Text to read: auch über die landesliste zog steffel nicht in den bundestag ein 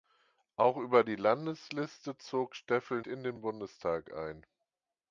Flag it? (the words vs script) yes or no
yes